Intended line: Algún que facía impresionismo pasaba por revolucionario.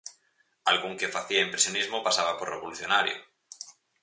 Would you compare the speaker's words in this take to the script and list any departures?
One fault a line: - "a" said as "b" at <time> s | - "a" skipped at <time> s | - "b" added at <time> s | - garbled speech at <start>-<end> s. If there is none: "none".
none